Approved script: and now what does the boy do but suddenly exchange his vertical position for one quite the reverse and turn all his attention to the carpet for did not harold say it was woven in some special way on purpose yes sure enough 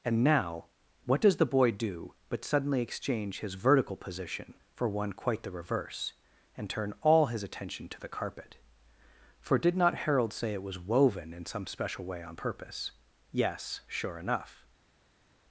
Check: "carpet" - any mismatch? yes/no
no